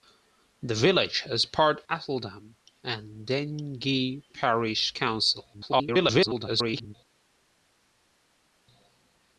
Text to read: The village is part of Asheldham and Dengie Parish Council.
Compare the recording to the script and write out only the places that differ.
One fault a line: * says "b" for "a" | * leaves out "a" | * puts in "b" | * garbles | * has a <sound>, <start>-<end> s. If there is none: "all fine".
* leaves out "of"
* garbles